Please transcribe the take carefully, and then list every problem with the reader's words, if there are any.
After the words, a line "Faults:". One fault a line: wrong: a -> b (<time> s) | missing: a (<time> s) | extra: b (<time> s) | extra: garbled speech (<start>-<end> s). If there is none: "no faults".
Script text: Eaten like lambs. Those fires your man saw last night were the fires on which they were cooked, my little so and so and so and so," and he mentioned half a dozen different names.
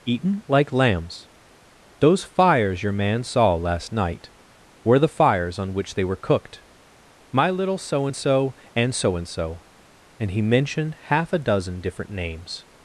Eaten like lambs. Those fires your man saw last night were the fires on which they were cooked, my little so and so and so and so," and he mentioned half a dozen different names.
Faults:
no faults